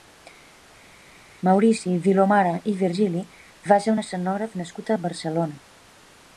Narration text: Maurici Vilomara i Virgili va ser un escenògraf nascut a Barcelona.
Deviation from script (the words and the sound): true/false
false